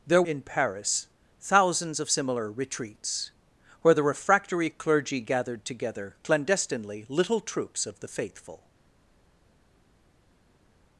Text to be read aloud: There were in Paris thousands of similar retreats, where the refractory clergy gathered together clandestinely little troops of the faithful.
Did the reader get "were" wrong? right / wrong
wrong